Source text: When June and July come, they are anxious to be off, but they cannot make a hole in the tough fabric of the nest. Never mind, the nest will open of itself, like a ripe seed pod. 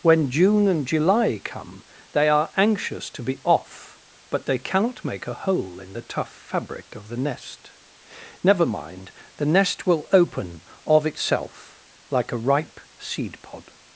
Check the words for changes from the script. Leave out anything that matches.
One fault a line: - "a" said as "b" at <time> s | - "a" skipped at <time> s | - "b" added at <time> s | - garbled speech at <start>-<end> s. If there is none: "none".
none